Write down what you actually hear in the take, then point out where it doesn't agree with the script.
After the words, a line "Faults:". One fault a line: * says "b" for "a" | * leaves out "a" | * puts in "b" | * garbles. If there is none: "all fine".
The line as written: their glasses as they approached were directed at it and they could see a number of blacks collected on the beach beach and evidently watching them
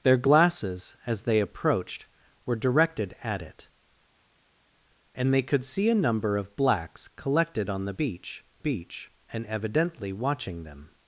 their glasses as they approached were directed at it and they could see a number of blacks collected on the beach beach and evidently watching them
Faults:
all fine